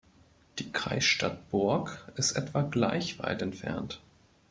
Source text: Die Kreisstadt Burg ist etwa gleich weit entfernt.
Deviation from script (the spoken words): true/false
false